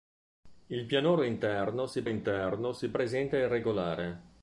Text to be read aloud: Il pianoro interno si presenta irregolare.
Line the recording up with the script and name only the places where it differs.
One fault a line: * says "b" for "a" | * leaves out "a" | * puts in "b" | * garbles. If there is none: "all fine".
* puts in "interno si"